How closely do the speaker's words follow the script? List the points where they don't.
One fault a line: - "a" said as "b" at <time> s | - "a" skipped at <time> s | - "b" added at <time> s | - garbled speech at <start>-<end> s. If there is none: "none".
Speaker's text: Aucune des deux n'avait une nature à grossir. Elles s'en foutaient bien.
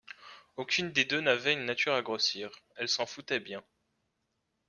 none